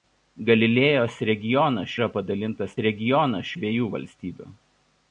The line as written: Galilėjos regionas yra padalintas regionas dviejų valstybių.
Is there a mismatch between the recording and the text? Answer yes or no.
no